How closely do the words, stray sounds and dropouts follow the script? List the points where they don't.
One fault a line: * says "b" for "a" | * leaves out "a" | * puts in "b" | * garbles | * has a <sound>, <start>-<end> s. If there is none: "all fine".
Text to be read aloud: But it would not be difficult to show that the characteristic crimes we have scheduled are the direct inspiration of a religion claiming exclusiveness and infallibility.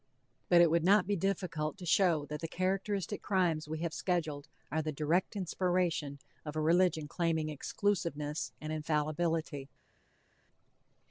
all fine